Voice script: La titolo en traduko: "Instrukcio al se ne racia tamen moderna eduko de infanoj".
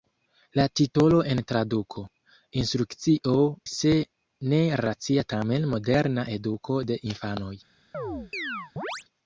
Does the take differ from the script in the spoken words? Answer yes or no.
yes